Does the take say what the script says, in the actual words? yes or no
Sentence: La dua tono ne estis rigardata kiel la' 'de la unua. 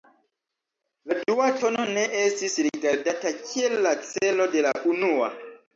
no